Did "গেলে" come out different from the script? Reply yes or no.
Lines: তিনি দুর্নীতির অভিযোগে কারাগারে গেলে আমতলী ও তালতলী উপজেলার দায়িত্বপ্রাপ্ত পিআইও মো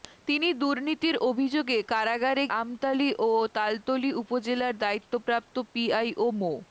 yes